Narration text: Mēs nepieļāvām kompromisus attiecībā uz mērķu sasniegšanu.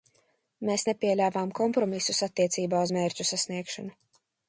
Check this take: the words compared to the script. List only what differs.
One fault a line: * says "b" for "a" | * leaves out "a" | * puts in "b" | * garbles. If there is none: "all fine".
all fine